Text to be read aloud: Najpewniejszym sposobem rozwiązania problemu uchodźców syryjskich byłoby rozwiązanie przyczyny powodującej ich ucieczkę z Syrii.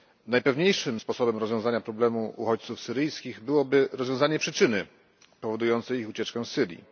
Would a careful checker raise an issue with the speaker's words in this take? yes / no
no